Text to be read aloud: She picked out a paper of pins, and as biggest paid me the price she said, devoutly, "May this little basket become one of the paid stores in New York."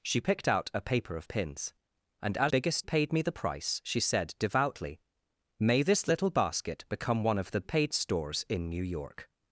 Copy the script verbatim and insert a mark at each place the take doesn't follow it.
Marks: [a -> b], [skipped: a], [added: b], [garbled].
She picked out a paper of pins, and as biggest paid me the price she said, devoutly, "May this little basket become one of the paid stores in New York."